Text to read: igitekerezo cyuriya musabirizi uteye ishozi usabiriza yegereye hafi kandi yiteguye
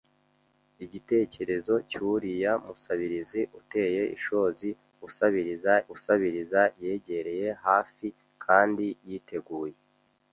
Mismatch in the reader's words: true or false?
true